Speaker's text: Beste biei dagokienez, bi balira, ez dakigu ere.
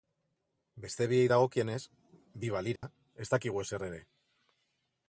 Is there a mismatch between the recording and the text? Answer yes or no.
yes